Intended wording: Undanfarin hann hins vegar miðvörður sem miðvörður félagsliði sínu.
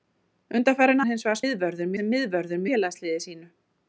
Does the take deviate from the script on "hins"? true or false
false